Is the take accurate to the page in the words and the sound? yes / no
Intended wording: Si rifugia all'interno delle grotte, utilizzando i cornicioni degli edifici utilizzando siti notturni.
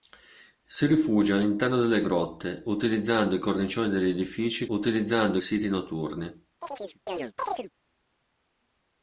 no